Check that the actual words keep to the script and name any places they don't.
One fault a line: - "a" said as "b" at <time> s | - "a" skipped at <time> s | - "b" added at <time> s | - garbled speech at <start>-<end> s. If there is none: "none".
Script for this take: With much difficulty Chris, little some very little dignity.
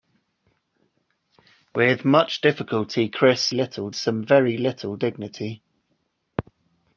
none